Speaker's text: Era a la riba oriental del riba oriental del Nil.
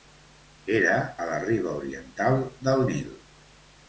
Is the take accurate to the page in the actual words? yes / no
no